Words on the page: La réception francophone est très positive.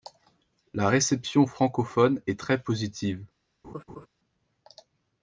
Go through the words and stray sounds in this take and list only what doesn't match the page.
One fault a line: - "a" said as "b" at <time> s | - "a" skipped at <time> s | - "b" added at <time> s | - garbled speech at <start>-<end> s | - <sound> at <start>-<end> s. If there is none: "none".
- laugh at 3.6-4.1 s